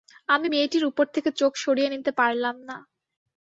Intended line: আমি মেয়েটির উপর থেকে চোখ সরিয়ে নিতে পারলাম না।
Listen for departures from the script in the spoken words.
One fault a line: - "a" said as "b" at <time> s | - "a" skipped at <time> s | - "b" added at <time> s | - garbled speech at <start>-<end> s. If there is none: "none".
none